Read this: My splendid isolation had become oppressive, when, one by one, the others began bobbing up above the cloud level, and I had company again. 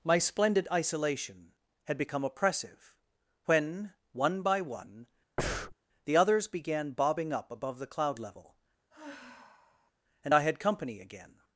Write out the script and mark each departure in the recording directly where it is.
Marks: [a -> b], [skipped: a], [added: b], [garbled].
My splendid isolation had become oppressive, when, one by one, the others began bobbing up above the cloud level, and I had company again.